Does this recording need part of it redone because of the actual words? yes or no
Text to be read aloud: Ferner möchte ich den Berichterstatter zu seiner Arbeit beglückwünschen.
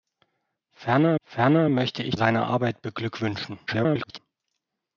yes